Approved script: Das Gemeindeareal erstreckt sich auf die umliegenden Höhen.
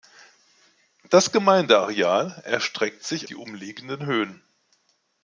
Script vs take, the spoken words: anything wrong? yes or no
yes